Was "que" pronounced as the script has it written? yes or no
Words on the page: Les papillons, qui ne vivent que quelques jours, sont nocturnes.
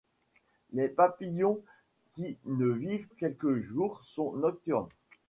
no